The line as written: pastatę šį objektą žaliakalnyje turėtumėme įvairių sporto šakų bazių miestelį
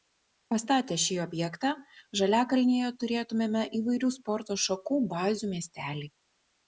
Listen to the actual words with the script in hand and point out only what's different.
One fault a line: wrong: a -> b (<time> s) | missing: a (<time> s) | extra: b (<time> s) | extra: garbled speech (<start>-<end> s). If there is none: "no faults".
no faults